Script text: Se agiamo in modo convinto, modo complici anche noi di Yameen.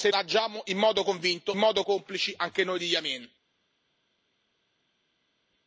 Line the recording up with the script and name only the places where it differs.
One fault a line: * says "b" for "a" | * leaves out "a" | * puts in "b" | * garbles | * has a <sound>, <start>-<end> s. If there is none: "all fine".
all fine